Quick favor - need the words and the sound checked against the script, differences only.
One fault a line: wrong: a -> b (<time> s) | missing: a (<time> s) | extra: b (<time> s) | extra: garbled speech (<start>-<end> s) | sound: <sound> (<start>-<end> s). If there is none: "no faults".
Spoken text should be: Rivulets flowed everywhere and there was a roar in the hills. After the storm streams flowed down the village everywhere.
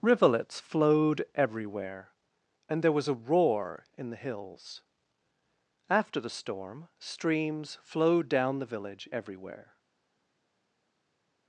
no faults